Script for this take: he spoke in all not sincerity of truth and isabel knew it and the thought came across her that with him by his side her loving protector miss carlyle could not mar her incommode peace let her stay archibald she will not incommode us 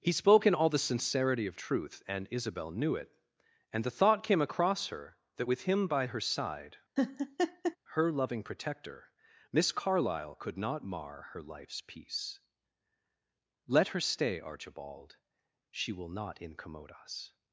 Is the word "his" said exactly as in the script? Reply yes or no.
no